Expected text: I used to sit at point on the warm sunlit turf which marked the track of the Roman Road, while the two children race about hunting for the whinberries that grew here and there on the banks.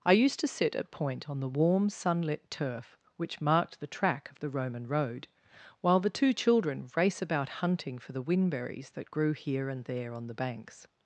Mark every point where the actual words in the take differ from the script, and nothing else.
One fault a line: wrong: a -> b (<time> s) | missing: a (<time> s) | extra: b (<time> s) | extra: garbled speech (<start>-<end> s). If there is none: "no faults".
no faults